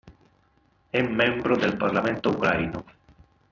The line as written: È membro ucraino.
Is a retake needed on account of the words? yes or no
yes